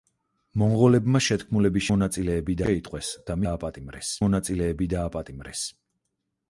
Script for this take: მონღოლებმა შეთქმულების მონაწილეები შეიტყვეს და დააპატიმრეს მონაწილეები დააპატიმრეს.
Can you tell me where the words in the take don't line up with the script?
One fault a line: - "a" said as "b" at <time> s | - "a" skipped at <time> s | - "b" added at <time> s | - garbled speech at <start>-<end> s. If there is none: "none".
none